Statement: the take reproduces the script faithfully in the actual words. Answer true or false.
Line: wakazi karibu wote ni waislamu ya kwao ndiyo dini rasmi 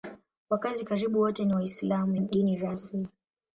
false